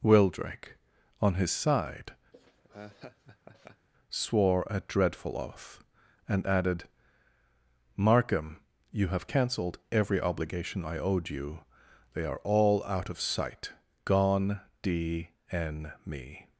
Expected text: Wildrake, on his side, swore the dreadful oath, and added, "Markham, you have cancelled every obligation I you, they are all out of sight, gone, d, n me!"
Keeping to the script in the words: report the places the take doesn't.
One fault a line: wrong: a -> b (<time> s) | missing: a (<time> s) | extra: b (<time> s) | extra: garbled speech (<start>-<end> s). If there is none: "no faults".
wrong: the -> a (4.7 s)
extra: owed (11.0 s)